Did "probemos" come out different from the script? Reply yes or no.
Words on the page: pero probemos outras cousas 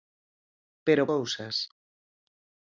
yes